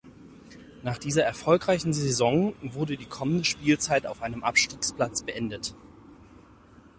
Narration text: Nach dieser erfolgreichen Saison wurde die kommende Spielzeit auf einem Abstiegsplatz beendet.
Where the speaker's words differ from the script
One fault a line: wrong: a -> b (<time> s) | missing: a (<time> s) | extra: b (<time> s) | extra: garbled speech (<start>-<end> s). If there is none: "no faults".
no faults